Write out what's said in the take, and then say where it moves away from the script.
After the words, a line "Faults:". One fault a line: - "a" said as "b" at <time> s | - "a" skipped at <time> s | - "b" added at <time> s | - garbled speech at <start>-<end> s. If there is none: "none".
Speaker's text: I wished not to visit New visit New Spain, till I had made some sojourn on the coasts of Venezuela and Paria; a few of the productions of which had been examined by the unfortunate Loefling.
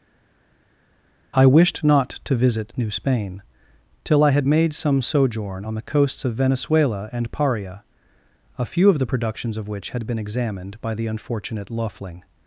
I wished not to visit New Spain, till I had made some sojourn on the coasts of Venezuela and Paria; a few of the productions of which had been examined by the unfortunate Loefling.
Faults:
- "visit New" skipped at 2.9 s